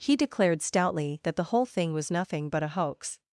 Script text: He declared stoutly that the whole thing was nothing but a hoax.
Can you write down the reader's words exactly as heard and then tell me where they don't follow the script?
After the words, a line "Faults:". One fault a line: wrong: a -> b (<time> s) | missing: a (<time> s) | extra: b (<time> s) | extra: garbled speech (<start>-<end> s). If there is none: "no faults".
He declared stoutly that the whole thing was nothing but a hoax.
Faults:
no faults